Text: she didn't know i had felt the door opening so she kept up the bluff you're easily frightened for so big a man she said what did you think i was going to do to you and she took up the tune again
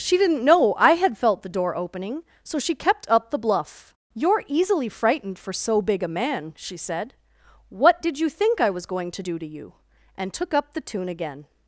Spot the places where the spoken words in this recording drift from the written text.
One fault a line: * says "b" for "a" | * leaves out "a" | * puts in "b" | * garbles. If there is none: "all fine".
* leaves out "she"